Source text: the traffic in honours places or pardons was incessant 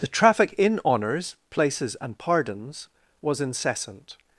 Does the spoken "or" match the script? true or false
false